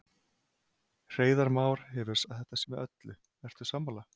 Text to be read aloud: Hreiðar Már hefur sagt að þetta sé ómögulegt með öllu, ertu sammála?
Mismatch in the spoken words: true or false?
true